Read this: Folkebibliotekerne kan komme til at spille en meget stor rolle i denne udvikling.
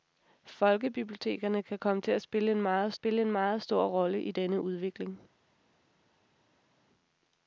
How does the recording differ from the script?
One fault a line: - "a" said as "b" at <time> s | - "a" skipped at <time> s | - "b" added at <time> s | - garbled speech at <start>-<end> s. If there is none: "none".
- "spille en meget" added at 2.9 s